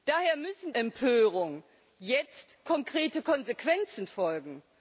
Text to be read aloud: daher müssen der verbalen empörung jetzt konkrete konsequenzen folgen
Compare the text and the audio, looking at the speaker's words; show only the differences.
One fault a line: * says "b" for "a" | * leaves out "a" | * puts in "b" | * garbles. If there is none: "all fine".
* leaves out "der verbalen"